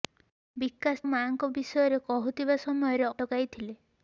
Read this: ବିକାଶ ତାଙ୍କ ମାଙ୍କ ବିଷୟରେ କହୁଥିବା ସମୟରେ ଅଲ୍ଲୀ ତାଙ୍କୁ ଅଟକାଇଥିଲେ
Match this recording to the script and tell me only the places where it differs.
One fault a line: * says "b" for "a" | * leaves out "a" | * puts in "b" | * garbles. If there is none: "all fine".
* leaves out "ତାଙ୍କ"
* leaves out "ଅଲ୍ଲୀ ତାଙ୍କୁ"